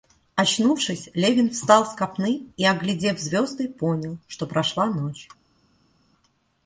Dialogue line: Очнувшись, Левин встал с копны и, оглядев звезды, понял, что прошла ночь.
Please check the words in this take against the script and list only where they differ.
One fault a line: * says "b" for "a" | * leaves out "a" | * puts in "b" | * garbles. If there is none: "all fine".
all fine